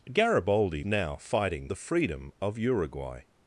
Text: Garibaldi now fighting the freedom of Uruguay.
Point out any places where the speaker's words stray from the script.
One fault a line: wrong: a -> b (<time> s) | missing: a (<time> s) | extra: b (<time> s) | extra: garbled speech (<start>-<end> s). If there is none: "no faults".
no faults